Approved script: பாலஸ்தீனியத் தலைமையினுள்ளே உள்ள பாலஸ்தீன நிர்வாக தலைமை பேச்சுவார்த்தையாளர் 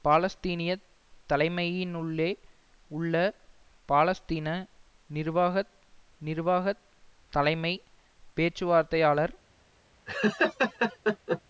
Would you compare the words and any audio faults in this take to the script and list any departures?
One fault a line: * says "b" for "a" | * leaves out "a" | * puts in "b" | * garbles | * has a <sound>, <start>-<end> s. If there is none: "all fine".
* puts in "நிர்வாக"
* has a laugh, 10.1-11.4 s